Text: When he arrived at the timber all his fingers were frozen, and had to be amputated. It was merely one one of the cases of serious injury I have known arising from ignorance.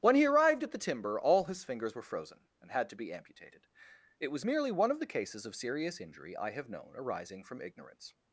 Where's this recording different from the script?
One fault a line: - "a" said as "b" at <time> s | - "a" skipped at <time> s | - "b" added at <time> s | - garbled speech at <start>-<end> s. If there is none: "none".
- "one" skipped at 4.9 s